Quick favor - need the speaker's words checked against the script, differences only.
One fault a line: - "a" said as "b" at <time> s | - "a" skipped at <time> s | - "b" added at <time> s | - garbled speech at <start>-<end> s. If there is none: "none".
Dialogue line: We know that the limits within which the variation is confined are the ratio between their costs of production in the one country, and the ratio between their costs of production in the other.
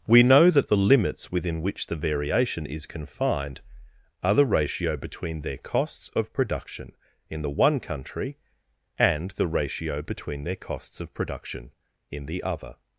none